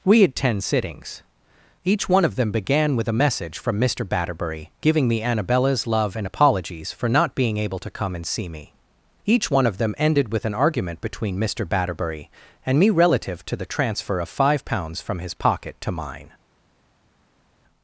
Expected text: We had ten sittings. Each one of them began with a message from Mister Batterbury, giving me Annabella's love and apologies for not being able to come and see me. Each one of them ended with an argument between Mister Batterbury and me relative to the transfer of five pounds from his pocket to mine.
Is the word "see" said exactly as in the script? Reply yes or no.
yes